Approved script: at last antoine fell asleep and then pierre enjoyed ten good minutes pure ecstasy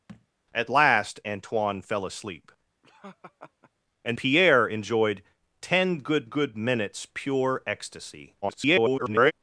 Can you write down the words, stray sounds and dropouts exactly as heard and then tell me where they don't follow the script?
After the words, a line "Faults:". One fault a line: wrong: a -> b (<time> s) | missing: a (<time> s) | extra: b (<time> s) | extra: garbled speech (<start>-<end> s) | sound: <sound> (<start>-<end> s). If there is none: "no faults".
at last antoine fell asleep and pierre enjoyed ten good good minutes pure ecstasy [garbled]
Faults:
sound: thud (0.1-0.3 s)
sound: laugh (2.8-3.7 s)
missing: then (4.2 s)
extra: good (6.2 s)
extra: garbled speech (8.4-9.3 s)